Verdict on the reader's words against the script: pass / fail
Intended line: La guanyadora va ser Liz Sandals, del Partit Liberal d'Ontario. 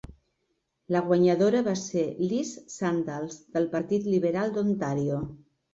pass